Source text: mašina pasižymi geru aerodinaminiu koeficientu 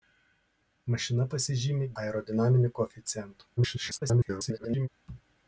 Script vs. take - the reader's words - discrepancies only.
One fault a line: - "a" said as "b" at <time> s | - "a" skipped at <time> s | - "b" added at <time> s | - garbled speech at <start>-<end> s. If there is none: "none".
- "geru" skipped at 1.9 s
- garbled speech at 3.6-4.9 s